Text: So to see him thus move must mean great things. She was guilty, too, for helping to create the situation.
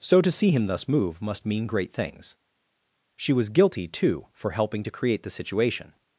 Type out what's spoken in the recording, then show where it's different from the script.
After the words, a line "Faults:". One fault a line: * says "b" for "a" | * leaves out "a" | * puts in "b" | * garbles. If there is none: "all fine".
So to see him thus move must mean great things. She was guilty, too, for helping to create the situation.
Faults:
all fine